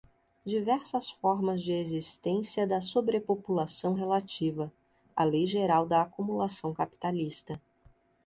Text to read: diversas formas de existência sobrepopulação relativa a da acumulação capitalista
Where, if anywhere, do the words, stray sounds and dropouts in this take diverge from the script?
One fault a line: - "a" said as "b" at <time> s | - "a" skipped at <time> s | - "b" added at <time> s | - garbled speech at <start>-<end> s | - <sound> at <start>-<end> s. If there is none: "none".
- "da" added at 2.6 s
- "lei geral" added at 5.3 s